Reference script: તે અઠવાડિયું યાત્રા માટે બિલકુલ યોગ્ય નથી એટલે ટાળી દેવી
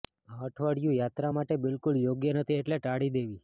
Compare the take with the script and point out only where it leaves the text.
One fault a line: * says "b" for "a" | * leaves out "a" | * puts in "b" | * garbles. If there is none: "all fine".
* says "આ" for "તે"